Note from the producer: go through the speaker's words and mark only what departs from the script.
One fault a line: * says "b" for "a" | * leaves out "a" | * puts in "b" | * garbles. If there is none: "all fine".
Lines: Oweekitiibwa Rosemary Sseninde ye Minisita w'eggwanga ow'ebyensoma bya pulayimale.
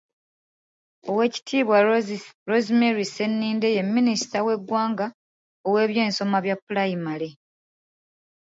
all fine